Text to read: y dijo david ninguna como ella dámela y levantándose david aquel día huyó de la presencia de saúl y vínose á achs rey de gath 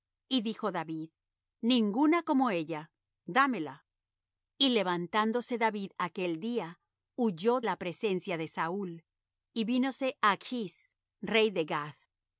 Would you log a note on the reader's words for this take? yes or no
yes